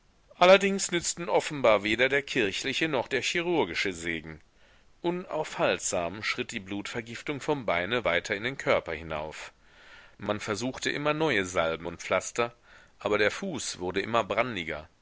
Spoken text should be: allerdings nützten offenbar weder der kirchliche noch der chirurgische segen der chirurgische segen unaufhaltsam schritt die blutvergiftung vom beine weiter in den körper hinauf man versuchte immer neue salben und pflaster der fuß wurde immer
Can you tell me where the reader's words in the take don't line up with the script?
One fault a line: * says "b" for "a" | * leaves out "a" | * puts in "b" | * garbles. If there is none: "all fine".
* leaves out "der chirurgische segen"
* puts in "aber"